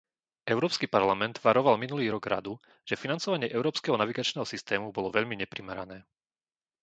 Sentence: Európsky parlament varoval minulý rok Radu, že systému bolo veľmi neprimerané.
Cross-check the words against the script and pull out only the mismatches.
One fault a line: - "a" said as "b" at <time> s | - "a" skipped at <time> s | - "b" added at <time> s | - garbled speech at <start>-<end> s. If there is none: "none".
- "financovanie európskeho navigačného" added at 3.0 s